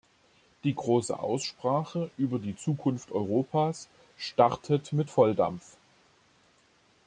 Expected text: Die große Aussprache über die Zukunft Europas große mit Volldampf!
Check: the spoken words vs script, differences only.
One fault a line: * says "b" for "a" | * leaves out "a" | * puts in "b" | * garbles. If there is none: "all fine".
* says "startet" for "große"